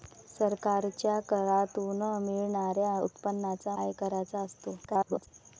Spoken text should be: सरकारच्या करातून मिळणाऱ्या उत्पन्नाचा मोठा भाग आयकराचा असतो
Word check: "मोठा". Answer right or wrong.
wrong